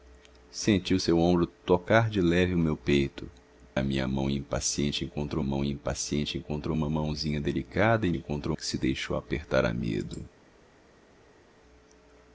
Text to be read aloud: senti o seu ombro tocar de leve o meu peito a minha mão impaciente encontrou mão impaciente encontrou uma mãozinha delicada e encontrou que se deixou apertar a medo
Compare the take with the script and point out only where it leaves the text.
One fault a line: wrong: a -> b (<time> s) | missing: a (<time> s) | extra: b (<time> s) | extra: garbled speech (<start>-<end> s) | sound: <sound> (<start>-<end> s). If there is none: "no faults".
no faults